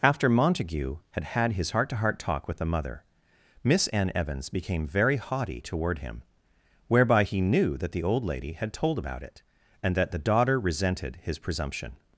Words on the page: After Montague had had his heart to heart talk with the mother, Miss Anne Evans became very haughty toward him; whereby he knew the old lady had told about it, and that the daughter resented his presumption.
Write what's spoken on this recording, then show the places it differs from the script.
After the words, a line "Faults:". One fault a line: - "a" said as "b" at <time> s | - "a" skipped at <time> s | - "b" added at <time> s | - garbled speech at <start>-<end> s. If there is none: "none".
After Montague had had his heart to heart talk with the mother, Miss Anne Evans became very haughty toward him; whereby he knew that the old lady had told about it, and that the daughter resented his presumption.
Faults:
- "that" added at 7.8 s